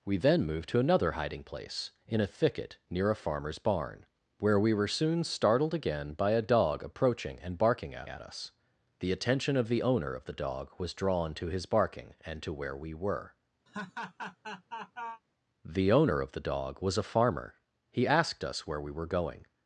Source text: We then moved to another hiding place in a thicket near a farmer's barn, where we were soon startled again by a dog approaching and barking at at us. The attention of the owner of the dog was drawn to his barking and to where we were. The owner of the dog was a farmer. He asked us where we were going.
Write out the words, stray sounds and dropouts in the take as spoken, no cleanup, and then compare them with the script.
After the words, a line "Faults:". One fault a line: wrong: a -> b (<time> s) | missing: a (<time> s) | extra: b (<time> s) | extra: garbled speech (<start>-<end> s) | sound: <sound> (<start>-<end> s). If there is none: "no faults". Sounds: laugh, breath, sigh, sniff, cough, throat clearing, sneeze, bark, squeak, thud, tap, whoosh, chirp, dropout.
We then moved to another hiding place in a thicket near a farmer's barn, where we were soon startled again by a dog approaching and barking at at us. The attention of the owner of the dog was drawn to his barking and to where we were. The owner of the dog was a farmer. He asked us where we were going.
Faults:
sound: laugh (13.7-15.2 s)